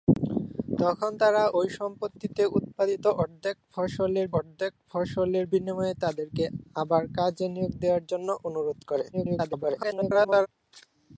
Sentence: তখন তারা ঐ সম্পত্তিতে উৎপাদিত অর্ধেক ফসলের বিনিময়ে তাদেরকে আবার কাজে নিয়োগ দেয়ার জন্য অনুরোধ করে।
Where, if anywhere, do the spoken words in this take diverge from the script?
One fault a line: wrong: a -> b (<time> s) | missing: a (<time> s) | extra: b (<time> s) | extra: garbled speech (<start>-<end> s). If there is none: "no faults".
extra: অর্ধেক ফসলের (4.4 s)
extra: garbled speech (9.1-10.5 s)